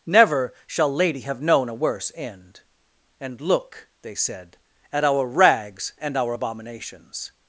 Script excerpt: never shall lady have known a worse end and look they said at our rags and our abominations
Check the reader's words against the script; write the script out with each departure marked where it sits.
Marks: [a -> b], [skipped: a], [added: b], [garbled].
never shall lady have known a worse end and look they said at our rags and our abominations